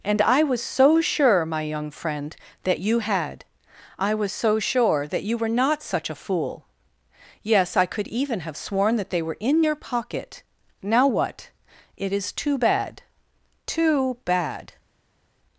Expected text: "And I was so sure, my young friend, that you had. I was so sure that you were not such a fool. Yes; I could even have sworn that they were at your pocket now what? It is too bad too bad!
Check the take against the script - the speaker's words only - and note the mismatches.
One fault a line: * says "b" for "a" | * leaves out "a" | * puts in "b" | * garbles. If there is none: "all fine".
* says "in" for "at"